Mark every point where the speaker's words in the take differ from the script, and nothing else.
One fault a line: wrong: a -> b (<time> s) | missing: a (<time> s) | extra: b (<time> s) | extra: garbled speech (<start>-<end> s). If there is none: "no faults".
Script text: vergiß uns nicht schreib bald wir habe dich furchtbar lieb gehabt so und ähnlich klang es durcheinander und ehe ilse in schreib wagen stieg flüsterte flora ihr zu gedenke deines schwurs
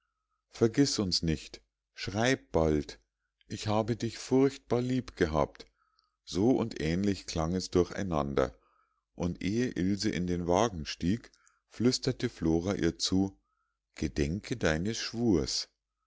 wrong: wir -> ich (3.5 s)
wrong: schreib -> den (10.2 s)